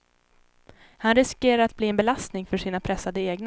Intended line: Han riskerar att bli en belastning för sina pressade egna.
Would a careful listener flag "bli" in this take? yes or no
no